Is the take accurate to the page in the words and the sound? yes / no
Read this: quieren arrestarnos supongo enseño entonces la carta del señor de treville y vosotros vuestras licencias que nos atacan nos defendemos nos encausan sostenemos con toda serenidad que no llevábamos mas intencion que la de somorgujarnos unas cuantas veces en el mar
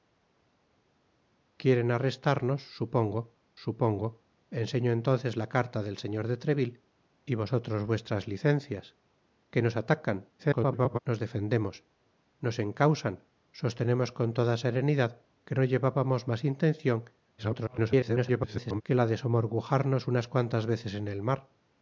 no